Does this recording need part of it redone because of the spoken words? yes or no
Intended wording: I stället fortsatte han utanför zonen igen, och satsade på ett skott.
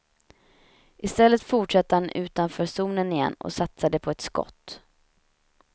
no